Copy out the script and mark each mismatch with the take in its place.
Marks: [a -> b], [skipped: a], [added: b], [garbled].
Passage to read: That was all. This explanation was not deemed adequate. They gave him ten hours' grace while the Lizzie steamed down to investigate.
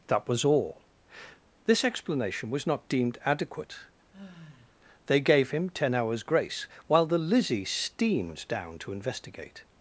That was all. This explanation was not deemed adequate. They gave him ten hours' grace while the Lizzie steamed down to investigate.